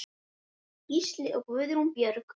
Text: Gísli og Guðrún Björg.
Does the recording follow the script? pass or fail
pass